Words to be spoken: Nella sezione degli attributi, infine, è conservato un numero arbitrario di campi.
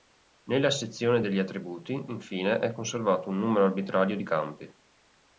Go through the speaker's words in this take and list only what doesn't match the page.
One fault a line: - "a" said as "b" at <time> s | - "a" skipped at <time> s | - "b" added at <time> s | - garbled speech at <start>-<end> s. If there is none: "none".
none